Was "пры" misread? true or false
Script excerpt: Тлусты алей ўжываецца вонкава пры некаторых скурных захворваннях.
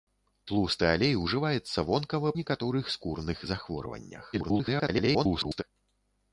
true